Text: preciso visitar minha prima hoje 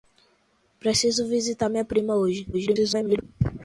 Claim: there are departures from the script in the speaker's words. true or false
true